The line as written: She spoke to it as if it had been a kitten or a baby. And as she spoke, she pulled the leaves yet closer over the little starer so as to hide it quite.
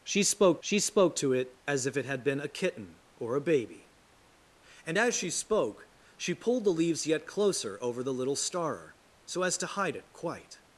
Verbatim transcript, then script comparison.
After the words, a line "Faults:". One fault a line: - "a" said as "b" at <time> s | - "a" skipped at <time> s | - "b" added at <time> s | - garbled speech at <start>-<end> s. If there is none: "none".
She spoke she spoke to it as if it had been a kitten or a baby. And as she spoke, she pulled the leaves yet closer over the little starer so as to hide it quite.
Faults:
- "she spoke" added at 0.6 s